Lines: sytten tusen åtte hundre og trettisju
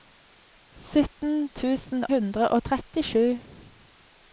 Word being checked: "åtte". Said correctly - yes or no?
no